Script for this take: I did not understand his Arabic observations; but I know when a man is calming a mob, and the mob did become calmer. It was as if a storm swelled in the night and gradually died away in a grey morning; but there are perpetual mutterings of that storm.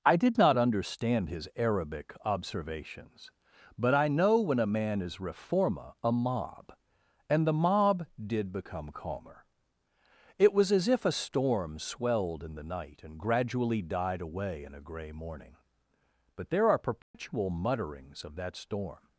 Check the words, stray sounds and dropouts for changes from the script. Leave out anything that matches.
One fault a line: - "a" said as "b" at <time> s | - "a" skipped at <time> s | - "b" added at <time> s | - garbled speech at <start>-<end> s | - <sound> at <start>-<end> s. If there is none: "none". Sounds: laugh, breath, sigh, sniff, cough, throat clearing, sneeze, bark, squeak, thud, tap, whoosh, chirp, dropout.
- "calming" said as "reforma" at 5.2 s
- dropout at 17.0-17.1 s